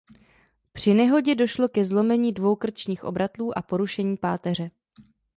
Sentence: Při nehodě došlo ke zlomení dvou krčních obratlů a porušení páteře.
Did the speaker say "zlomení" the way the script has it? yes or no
yes